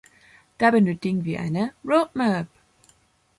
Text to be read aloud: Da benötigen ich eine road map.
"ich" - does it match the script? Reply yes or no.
no